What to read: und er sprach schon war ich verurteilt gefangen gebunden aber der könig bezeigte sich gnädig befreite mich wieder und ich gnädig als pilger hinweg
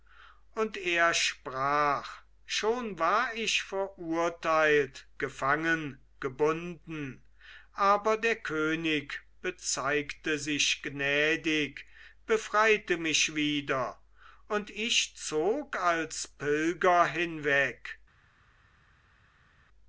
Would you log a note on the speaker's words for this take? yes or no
yes